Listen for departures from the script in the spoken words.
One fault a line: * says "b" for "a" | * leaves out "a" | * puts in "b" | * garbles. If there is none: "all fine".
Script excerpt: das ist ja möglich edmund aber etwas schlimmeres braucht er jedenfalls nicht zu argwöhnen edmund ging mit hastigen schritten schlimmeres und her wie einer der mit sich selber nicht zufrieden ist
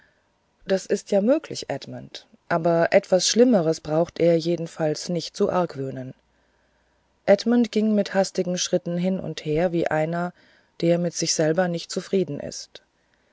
* says "hin" for "schlimmeres"